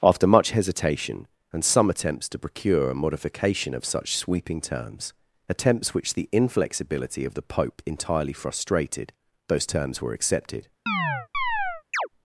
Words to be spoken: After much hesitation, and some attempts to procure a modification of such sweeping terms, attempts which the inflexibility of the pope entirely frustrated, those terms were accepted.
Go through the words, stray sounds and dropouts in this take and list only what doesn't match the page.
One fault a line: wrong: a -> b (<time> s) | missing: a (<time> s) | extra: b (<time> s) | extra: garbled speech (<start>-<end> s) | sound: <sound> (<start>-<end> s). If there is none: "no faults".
sound: chirp (10.9-12.1 s)